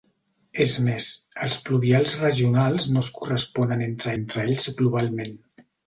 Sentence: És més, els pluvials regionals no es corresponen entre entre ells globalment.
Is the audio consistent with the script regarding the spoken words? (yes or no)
yes